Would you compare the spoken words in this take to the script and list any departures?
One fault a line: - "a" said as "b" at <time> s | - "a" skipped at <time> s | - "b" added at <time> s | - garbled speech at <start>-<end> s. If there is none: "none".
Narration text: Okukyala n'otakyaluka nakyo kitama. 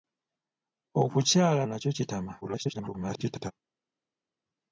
- "n'otakyaluka" skipped at 1.6 s
- garbled speech at 2.4-3.5 s